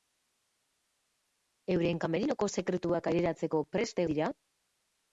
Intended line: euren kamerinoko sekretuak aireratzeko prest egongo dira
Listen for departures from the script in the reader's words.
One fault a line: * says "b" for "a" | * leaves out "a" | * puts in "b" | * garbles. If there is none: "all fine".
* leaves out "egongo"